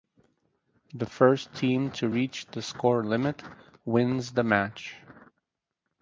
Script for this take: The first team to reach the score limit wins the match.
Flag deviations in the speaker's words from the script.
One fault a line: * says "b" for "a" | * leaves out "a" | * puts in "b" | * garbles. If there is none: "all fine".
all fine